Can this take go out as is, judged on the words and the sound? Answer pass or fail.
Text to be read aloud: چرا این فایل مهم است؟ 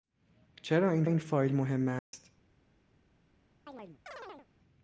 fail